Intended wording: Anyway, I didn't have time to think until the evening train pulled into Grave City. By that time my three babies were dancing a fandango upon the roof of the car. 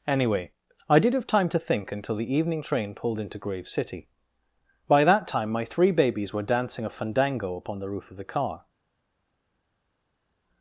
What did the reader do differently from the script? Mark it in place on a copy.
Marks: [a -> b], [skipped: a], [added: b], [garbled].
Anyway, I [didn't -> did] have time to think until the evening train pulled into Grave City. By that time my three babies were dancing a fandango upon the roof of the car.